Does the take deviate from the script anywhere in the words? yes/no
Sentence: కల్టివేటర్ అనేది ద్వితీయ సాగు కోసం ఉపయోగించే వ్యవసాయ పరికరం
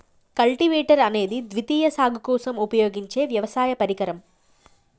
no